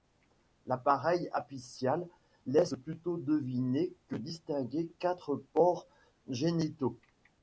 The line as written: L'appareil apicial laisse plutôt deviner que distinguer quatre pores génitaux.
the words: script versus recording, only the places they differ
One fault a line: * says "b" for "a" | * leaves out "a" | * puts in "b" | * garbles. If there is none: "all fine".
all fine